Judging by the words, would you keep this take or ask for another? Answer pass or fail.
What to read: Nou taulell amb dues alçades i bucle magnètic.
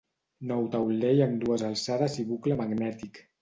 pass